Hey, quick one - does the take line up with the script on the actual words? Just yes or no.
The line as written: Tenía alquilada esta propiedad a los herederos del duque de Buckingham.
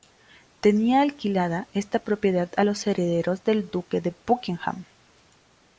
yes